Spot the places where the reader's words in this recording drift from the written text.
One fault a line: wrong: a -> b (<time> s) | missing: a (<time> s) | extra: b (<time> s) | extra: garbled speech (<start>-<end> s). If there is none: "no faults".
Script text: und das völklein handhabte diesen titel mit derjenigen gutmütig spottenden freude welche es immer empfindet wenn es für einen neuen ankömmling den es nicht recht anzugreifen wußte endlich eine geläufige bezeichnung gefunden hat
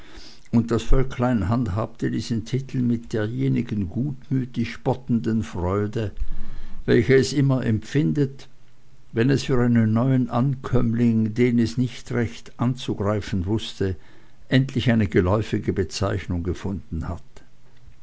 no faults